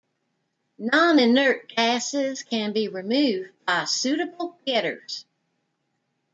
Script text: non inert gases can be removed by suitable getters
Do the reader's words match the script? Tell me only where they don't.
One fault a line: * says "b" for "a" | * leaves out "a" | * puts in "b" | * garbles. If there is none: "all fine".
all fine